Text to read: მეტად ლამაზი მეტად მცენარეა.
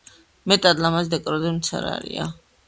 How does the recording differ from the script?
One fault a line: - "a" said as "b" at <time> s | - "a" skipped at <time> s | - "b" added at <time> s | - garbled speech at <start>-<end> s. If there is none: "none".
- "მეტად" said as "დეკორატიული" at 1.2 s